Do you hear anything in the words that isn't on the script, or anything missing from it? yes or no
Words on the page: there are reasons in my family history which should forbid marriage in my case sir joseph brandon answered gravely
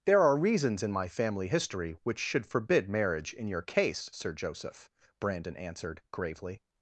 yes